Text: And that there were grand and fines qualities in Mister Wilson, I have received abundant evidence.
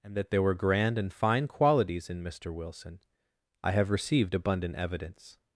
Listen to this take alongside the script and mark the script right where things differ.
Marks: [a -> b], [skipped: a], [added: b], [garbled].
And that there were grand and [fines -> fine] qualities in Mister Wilson, I have received abundant evidence.